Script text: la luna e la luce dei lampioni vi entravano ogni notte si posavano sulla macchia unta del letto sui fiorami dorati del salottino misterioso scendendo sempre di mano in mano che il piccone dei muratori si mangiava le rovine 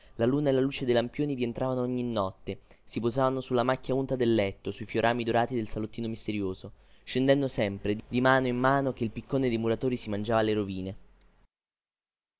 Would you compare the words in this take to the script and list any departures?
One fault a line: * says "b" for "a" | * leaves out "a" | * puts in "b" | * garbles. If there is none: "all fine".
all fine